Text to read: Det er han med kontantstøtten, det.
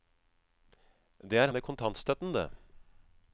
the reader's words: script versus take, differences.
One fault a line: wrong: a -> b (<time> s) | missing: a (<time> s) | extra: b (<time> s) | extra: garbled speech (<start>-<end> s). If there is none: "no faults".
missing: han (1.5 s)